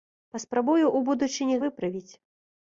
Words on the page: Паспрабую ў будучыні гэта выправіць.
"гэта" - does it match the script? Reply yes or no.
no